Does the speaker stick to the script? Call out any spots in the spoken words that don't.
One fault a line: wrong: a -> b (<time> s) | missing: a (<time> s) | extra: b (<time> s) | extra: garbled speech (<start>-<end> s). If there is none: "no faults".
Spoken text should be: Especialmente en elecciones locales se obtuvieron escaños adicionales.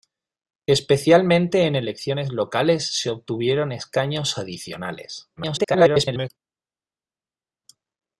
extra: garbled speech (5.4-6.3 s)